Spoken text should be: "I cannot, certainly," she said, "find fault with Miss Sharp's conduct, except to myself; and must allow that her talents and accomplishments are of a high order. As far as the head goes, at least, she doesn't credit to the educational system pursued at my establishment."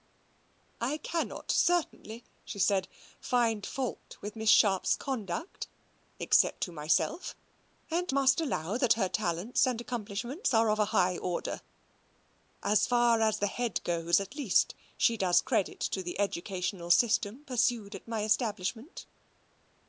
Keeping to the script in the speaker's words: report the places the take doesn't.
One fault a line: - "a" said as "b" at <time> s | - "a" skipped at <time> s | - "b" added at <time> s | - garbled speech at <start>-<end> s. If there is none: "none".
- "doesn't" said as "does" at 15.2 s